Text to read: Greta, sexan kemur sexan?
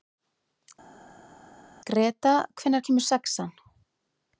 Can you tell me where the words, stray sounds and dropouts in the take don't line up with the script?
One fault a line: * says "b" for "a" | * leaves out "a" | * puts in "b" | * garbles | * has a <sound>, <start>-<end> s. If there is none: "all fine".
* says "hvenær" for "sexan"